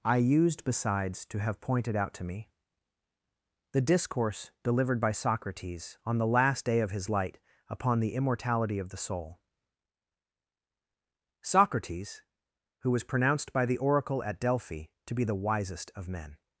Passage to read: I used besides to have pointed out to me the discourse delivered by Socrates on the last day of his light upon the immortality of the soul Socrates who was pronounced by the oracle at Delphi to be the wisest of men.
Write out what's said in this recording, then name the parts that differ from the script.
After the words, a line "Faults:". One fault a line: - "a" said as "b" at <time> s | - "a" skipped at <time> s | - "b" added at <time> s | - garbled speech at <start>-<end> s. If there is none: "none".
I used besides to have pointed out to me the discourse delivered by Socrates on the last day of his light upon the immortality of the soul Socrates who was pronounced by the oracle at Delphi to be the wisest of men.
Faults:
none